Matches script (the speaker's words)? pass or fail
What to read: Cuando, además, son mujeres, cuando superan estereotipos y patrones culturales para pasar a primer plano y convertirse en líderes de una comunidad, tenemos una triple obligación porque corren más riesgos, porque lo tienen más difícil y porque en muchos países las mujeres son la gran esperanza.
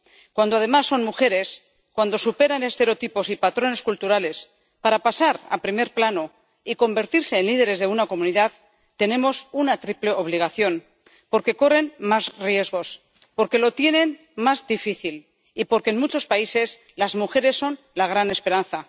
pass